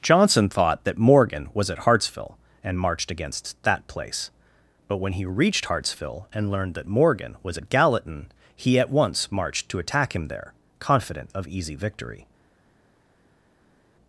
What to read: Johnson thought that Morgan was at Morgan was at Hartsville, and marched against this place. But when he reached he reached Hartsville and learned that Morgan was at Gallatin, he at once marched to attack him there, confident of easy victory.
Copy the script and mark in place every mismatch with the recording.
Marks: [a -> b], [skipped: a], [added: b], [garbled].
Johnson thought that Morgan was at [skipped: Morgan was at] Hartsville, and marched against [this -> that] place. But when he reached [skipped: he reached] Hartsville and learned that Morgan was at Gallatin, he at once marched to attack him there, confident of easy victory.